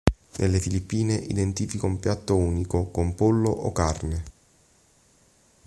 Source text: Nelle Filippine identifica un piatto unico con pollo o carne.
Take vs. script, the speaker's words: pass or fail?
pass